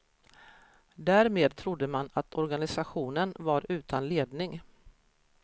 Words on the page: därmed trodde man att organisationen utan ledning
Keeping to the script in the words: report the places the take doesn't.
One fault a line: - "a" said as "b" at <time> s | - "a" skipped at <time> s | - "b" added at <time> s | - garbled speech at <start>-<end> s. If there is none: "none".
- "var" added at 3.4 s